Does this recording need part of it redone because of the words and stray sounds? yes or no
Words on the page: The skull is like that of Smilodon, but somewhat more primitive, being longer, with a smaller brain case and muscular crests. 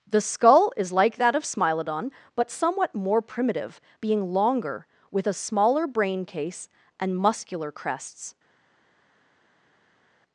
no